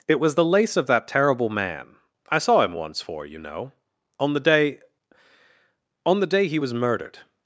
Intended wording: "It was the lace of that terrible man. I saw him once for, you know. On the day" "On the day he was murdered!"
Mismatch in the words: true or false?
false